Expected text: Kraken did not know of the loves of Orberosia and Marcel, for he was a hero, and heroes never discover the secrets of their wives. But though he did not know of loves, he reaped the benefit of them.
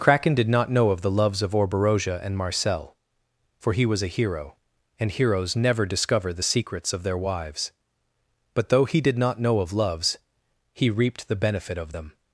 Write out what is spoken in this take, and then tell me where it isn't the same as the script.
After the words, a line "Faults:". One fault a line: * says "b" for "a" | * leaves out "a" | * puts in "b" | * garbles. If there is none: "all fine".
Kraken did not know of the loves of Orberosia and Marcel, for he was a hero, and heroes never discover the secrets of their wives. But though he did not know of loves, he reaped the benefit of them.
Faults:
all fine